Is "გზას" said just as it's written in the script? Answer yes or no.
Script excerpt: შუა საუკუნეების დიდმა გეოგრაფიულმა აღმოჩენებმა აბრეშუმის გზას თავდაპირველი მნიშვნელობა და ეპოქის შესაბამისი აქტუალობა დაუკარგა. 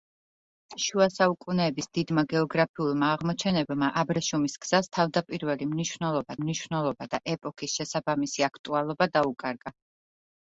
yes